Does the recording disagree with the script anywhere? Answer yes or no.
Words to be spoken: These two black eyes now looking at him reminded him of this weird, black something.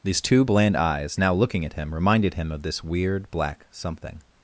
yes